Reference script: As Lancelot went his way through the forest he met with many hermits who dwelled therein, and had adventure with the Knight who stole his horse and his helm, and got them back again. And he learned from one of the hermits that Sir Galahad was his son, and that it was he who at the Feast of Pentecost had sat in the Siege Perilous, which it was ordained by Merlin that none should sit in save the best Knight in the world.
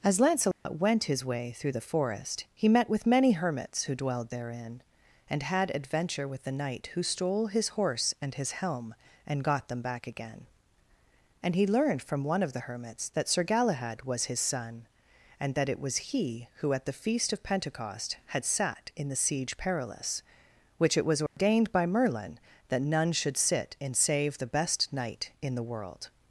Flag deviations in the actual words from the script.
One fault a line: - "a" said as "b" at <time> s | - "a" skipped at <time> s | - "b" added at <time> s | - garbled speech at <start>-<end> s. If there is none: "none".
none